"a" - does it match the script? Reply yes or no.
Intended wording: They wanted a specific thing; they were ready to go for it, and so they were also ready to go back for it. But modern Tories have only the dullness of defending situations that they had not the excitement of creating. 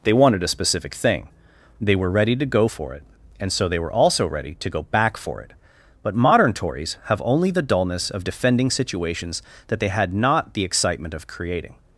yes